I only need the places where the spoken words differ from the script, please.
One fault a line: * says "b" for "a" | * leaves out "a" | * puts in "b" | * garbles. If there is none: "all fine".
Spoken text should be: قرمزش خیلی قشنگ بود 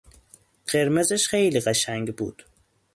all fine